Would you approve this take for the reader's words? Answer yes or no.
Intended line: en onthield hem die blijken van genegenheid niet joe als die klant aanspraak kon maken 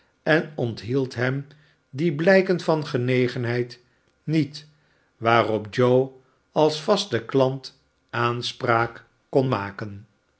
no